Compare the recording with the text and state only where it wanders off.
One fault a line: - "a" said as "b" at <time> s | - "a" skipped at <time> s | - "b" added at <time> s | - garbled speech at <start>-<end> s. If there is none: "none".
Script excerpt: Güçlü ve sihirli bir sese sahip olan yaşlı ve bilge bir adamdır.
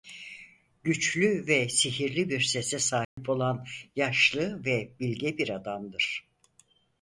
none